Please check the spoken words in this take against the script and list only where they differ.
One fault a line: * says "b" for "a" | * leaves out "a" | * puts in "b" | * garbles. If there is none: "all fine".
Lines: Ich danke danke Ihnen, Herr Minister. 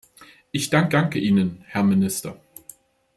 all fine